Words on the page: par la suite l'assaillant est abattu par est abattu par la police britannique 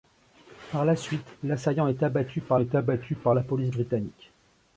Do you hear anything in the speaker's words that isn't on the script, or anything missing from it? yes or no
no